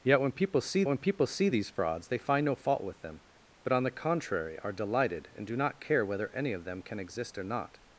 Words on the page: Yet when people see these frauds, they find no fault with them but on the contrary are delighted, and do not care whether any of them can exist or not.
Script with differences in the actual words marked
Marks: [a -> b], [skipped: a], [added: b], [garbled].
Yet when people see [added: when people see] these frauds, they find no fault with them but on the contrary are delighted, and do not care whether any of them can exist or not.